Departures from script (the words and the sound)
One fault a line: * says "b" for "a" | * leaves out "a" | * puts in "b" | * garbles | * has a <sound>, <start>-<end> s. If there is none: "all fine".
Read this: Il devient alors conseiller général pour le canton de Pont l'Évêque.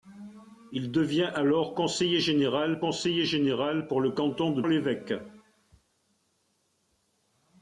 * puts in "conseiller général"
* leaves out "Pont"